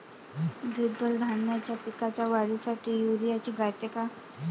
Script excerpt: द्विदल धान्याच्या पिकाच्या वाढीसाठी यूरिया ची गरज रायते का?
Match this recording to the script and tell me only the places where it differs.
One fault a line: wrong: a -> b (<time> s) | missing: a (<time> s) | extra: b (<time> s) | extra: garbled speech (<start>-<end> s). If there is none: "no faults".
missing: गरज (3.5 s)